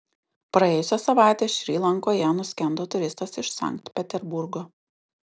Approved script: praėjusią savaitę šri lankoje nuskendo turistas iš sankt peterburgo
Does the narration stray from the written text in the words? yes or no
no